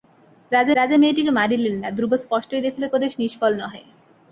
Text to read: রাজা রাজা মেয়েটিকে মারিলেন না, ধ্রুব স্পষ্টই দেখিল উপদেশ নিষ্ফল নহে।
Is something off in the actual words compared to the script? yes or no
no